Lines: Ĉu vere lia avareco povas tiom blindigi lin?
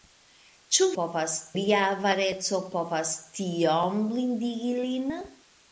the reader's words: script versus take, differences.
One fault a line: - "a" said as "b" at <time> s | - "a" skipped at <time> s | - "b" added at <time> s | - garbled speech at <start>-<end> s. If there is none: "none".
- "vere" said as "povas" at 1.0 s